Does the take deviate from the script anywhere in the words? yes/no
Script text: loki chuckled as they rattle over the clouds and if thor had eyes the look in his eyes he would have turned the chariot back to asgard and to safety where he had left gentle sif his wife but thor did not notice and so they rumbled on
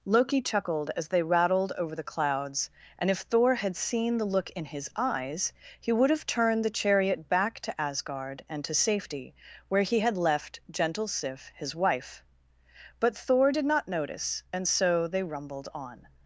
yes